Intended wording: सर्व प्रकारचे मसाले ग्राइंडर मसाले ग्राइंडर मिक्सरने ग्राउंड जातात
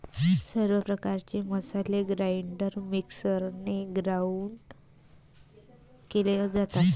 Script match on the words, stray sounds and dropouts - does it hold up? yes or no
no